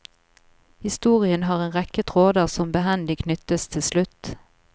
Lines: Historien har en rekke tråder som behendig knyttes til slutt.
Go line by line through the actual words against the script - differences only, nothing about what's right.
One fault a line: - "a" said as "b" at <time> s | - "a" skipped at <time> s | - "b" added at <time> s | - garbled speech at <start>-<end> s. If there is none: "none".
none